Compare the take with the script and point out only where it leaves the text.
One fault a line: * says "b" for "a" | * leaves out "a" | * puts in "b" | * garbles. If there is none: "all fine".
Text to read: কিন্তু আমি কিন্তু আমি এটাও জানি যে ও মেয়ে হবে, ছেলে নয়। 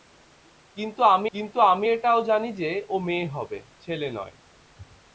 all fine